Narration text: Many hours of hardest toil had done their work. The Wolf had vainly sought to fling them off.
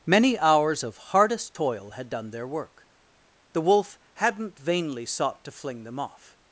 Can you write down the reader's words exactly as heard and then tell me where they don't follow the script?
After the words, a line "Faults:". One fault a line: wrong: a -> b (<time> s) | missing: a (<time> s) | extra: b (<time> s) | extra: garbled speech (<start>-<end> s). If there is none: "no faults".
Many hours of hardest toil had done their work. The Wolf hadn't vainly sought to fling them off.
Faults:
wrong: had -> hadn't (4.2 s)